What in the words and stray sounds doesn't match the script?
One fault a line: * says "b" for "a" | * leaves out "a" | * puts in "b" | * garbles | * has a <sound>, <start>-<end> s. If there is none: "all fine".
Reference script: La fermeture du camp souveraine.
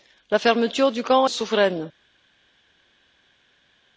all fine